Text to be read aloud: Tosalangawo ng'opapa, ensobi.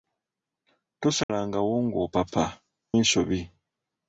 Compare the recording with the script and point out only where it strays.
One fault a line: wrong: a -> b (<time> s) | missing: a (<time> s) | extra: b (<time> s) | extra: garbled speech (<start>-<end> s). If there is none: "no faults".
no faults